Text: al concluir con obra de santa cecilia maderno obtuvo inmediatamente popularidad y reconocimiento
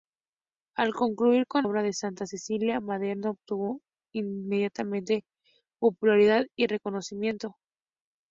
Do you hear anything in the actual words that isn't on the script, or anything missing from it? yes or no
no